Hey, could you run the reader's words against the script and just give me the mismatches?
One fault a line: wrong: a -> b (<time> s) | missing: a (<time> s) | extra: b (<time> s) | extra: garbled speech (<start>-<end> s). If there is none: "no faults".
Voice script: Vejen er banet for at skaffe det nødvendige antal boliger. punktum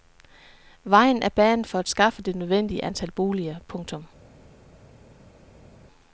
no faults